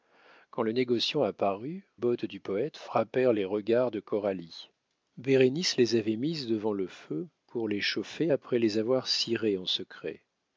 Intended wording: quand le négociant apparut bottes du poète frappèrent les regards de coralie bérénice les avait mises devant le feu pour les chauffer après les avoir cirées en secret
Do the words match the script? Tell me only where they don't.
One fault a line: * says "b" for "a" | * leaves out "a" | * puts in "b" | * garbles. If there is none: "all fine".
all fine